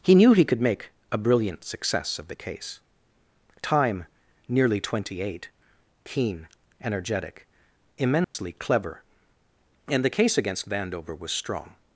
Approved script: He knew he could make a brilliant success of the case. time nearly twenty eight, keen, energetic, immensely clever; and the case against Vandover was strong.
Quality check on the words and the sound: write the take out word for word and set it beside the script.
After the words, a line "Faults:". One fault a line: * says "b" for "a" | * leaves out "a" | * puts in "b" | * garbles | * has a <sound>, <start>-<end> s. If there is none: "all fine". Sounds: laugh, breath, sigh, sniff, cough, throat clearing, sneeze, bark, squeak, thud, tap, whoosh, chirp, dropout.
He knew he could make a brilliant success of the case. time nearly twenty eight, keen, energetic, immensely clever; and the case against Vandover was strong.
Faults:
* has a dropout, 8.2-8.4 s